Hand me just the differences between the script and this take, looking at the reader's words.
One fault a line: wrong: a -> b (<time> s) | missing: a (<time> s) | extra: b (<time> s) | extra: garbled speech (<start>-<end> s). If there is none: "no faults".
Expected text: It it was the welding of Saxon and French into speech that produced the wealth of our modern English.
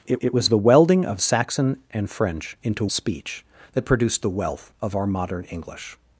no faults